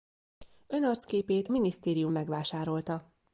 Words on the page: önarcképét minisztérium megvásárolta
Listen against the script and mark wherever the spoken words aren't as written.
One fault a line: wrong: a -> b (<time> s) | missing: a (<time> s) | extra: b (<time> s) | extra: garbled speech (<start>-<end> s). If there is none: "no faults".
no faults